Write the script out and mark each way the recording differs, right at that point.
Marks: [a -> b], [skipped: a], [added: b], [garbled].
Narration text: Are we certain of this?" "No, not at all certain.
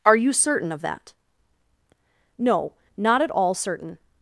Are [we -> you] certain of [this?" -> that] "No, not at all certain.